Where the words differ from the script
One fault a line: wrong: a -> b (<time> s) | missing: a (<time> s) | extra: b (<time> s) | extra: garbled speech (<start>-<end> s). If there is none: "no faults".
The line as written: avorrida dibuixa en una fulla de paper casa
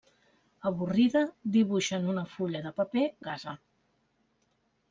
no faults